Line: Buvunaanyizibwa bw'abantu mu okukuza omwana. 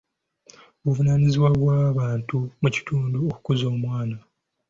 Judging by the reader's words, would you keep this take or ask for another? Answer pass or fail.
fail